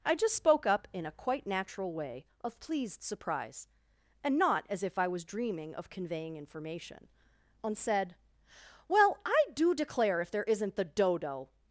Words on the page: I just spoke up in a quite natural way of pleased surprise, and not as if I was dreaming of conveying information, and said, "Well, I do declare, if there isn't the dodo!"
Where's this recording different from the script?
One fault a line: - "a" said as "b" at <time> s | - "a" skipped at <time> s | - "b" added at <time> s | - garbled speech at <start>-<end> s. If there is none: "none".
none